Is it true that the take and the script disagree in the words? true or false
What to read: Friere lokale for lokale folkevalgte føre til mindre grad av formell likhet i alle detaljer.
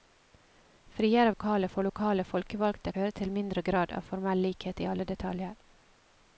false